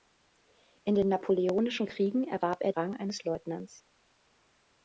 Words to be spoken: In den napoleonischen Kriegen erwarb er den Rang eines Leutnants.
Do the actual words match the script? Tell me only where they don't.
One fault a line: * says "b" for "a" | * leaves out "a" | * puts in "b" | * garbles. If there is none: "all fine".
* leaves out "den"